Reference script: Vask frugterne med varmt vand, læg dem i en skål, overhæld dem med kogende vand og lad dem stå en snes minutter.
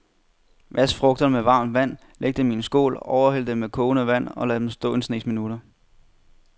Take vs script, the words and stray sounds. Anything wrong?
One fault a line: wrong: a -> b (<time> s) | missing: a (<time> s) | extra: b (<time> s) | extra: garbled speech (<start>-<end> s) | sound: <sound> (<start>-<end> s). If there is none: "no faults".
no faults